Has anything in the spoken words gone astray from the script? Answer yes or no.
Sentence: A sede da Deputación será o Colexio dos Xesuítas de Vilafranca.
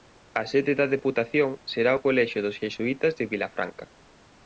no